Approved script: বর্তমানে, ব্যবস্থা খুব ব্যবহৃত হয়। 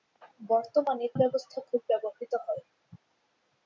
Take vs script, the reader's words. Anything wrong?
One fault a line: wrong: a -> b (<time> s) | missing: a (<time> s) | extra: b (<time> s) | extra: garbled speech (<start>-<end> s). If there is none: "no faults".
no faults